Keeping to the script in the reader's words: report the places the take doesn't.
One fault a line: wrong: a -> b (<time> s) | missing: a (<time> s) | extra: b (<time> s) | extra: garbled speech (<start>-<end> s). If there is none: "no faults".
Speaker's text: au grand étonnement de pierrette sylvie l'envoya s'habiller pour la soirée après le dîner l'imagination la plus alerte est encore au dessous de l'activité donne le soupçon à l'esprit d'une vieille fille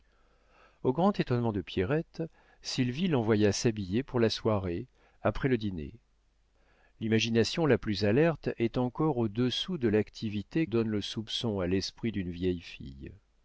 no faults